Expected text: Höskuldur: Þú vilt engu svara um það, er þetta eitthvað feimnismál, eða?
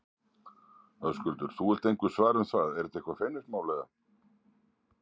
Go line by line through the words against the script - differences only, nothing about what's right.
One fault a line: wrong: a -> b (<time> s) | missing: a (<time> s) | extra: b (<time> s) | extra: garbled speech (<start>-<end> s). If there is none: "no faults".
no faults